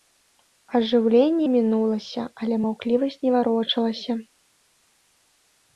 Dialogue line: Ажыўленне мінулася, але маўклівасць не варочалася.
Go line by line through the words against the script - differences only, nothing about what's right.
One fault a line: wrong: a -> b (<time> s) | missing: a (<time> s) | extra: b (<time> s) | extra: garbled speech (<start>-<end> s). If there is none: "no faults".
no faults